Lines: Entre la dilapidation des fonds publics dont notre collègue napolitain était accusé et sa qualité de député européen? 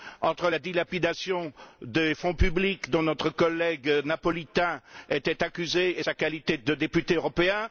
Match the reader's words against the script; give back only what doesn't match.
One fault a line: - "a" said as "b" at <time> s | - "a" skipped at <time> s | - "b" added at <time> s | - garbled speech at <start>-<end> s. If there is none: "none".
none